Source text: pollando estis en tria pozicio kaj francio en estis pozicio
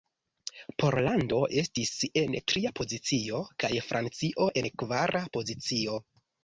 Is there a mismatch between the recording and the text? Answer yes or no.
yes